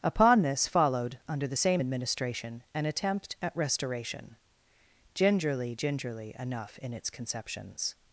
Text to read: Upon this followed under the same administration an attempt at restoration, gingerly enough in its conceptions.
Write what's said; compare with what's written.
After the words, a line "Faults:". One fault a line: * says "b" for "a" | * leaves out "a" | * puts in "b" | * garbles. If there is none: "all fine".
Upon this followed under the same administration an attempt at restoration, gingerly gingerly enough in its conceptions.
Faults:
* puts in "gingerly"